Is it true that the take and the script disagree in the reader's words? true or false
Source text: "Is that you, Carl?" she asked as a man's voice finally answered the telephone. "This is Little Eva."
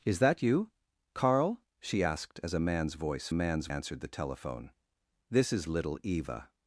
true